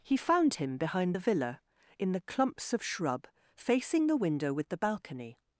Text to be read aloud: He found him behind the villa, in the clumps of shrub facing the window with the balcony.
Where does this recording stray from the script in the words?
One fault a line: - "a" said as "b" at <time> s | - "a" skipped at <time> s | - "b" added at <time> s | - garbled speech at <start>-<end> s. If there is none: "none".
none